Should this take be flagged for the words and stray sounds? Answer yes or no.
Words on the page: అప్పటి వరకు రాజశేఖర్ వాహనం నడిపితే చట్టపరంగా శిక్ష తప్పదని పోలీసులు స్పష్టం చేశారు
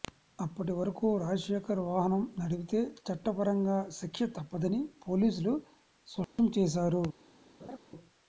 yes